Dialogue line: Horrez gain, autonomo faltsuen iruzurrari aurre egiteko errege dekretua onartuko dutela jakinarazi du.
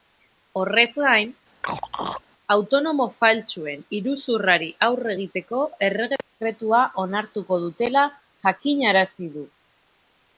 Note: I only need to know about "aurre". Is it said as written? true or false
true